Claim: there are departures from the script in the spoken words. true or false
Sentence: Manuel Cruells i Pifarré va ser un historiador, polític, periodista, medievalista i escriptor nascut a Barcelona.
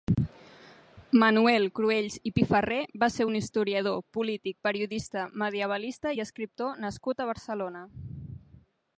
false